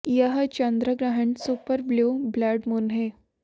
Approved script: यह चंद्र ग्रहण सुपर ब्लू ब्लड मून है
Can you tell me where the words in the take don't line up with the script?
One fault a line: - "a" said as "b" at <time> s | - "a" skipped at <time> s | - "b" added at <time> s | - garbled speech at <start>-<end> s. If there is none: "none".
none